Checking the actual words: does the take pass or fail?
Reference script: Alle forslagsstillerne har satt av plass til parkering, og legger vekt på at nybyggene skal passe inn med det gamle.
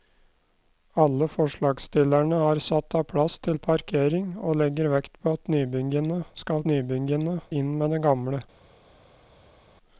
fail